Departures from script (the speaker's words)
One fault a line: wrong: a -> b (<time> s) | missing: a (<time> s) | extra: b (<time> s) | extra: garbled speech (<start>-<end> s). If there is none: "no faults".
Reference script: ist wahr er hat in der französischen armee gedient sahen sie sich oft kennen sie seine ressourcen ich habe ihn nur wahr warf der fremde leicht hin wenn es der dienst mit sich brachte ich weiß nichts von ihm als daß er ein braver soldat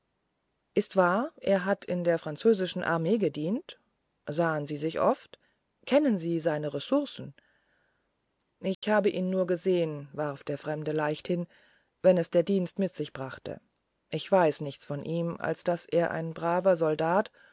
wrong: wahr -> gesehen (9.5 s)